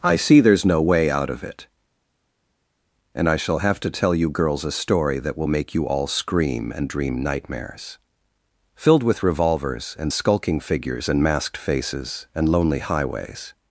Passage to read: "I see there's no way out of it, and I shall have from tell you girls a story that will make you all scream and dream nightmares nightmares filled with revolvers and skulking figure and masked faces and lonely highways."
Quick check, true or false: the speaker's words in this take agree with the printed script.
false